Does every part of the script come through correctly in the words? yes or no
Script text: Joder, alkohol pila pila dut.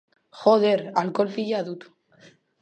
no